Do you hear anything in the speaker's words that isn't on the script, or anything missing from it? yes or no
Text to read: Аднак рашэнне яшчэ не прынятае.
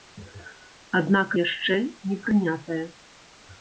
yes